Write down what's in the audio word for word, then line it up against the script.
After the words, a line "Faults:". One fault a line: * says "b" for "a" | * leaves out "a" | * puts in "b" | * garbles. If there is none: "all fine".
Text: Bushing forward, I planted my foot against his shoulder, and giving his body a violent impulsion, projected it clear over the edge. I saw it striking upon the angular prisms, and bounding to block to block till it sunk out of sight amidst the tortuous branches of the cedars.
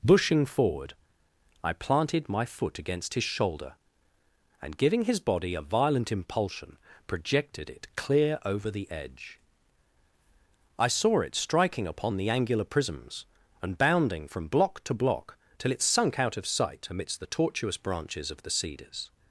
Bushing forward, I planted my foot against his shoulder, and giving his body a violent impulsion, projected it clear over the edge. I saw it striking upon the angular prisms, and bounding from block to block till it sunk out of sight amidst the tortuous branches of the cedars.
Faults:
* says "from" for "to"